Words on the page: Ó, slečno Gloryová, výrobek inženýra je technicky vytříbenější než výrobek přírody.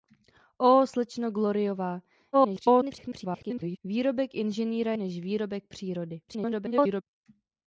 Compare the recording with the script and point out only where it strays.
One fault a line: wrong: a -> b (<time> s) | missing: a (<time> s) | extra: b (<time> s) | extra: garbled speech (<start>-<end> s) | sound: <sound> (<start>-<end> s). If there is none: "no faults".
extra: garbled speech (2.3-3.8 s)
missing: je technicky vytříbenější (4.9 s)
extra: garbled speech (6.3-7.0 s)